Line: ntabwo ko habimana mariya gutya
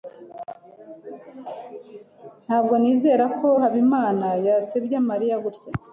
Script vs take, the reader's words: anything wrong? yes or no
yes